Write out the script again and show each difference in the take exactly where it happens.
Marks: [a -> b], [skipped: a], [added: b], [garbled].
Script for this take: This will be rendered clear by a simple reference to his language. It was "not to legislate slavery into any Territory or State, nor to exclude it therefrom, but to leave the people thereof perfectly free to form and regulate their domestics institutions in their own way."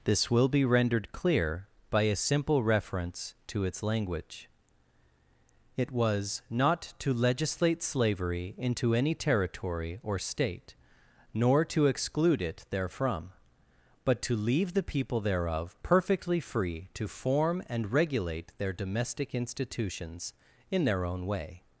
This will be rendered clear by a simple reference to [his -> its] language. It was "not to legislate slavery into any Territory or State, nor to exclude it therefrom, but to leave the people thereof perfectly free to form and regulate their [domestics -> domestic] institutions in their own way."